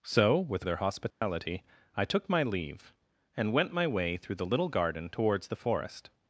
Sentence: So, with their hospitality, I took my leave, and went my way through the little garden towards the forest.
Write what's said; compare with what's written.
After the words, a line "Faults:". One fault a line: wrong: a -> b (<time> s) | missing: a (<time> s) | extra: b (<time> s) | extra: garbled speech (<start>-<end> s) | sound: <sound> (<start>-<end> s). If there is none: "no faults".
So, with their hospitality, I took my leave, and went my way through the little garden towards the forest.
Faults:
sound: dropout (1.1-1.2 s)